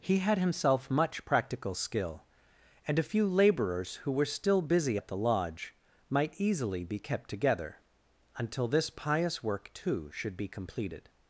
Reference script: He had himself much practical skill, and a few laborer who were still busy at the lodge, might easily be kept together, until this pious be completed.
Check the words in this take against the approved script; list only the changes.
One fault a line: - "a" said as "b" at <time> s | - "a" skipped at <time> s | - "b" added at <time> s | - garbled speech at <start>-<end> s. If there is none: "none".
- "laborer" said as "laborers" at 3.3 s
- "work too should" added at 9.4 s